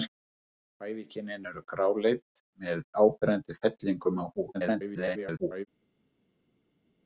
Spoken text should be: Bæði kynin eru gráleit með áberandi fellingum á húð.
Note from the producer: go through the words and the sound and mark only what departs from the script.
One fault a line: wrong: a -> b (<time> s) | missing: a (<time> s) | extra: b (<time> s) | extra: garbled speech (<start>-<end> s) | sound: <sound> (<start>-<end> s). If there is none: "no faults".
extra: garbled speech (4.5-5.7 s)